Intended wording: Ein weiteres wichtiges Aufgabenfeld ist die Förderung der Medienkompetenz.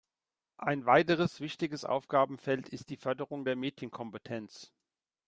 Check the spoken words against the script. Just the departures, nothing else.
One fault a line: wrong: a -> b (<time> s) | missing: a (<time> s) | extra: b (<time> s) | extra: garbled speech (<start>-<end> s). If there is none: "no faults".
no faults